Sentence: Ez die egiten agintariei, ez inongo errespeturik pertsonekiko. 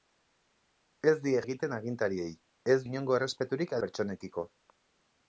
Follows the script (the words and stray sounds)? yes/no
yes